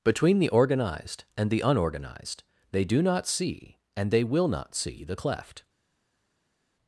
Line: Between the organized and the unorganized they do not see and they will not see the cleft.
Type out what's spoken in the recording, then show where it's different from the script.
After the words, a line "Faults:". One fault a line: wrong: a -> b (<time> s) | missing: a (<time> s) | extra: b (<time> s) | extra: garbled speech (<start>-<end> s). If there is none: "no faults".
Between the organized and the unorganized they do not see and they will not see the cleft.
Faults:
no faults